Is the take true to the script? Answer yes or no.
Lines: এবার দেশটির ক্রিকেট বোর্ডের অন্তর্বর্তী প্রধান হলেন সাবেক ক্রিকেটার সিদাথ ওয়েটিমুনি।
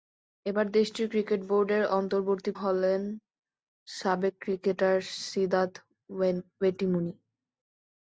no